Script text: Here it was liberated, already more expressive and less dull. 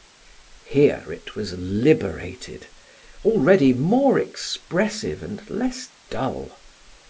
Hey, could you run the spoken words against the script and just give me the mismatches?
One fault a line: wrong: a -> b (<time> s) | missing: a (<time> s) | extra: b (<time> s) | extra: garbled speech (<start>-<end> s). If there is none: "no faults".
no faults